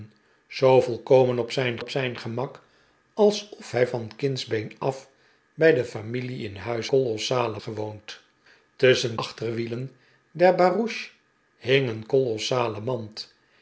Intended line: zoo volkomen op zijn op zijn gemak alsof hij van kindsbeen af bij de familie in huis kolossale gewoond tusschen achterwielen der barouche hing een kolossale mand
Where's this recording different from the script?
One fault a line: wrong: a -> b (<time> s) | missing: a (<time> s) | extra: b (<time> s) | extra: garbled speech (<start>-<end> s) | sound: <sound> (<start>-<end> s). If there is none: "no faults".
no faults